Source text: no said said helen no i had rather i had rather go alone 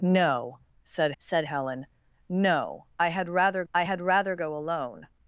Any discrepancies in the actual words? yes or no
no